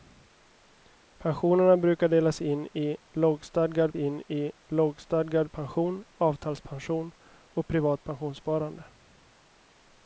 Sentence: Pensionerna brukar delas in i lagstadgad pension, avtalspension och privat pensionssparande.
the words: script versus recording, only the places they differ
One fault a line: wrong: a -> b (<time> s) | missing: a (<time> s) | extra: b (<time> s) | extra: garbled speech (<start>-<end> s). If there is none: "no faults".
extra: in i lagstadgad (4.0 s)